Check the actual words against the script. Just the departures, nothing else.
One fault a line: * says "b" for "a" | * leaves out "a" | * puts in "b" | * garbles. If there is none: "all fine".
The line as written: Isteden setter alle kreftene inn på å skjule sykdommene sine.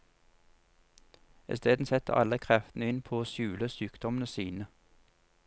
all fine